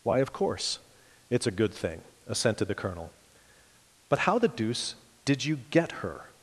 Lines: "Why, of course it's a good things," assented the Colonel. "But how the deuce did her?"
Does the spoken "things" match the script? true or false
false